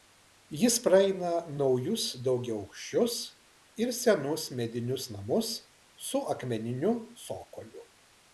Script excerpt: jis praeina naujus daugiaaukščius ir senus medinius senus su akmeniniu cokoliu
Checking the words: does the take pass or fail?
fail